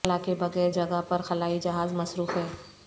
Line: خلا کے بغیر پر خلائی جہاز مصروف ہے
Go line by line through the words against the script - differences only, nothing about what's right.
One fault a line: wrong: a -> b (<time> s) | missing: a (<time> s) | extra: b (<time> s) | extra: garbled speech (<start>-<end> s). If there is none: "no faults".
extra: جگہ (0.7 s)